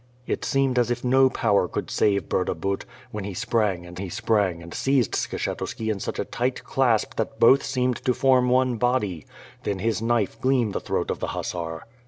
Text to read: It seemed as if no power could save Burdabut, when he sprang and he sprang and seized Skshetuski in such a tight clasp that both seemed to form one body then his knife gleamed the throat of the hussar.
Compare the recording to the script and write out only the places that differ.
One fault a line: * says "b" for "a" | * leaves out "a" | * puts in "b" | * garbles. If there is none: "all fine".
all fine